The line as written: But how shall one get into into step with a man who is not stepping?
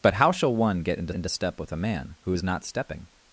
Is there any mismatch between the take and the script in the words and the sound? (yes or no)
no